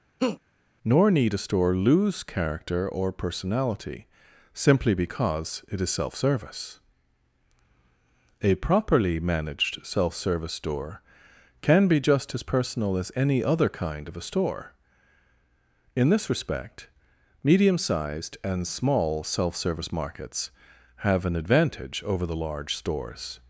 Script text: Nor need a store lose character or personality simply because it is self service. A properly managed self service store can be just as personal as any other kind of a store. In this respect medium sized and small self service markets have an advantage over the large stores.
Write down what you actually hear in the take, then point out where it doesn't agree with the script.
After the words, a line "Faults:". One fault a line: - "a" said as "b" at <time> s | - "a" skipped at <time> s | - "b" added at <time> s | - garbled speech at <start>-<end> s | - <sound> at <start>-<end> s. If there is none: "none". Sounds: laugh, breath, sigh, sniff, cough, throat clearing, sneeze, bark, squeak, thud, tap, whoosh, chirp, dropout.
Nor need a store lose character or personality simply because it is self service. A properly managed self service store can be just as personal as any other kind of a store. In this respect medium sized and small self service markets have an advantage over the large stores.
Faults:
- laugh at 0.2-0.4 s